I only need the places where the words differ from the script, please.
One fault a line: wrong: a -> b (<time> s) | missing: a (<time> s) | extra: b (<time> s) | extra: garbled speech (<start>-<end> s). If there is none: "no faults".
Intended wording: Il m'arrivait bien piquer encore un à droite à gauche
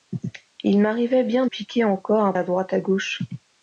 no faults